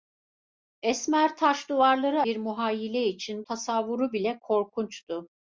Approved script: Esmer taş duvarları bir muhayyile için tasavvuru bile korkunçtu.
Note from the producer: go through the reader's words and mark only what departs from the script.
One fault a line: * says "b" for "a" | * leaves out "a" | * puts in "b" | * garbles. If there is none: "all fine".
all fine